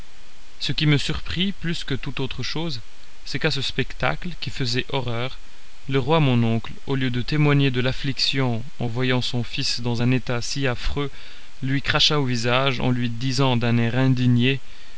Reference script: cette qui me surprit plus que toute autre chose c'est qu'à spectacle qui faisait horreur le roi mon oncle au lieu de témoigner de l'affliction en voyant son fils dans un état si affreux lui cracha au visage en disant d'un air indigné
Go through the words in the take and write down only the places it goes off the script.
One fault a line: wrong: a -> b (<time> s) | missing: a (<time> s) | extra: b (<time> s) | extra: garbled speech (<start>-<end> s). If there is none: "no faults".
wrong: cette -> ce (0.6 s)
extra: ce (3.5 s)
extra: lui (12.9 s)